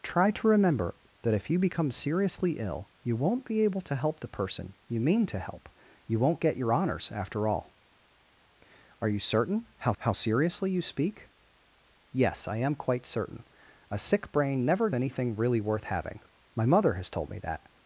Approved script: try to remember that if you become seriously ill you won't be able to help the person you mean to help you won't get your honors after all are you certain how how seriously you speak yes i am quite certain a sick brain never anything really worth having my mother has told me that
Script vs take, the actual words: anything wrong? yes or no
no